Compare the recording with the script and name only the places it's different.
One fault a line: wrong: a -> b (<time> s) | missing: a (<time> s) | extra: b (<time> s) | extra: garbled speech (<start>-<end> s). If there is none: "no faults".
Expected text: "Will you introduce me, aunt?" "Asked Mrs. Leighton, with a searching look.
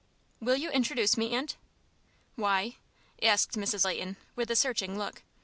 extra: Why (2.4 s)